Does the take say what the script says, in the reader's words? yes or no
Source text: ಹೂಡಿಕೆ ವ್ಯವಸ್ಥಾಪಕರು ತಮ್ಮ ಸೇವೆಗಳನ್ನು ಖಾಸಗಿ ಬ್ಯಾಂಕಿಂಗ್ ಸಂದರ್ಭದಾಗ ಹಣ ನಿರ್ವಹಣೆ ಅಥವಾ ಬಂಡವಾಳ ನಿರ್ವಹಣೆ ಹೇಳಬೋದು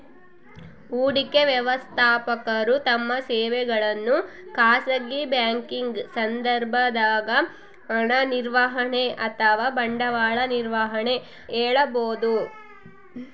yes